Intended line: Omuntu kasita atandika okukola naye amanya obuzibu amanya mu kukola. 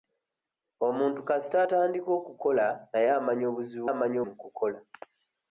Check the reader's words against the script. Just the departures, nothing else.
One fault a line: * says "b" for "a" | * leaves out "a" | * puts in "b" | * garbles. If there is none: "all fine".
all fine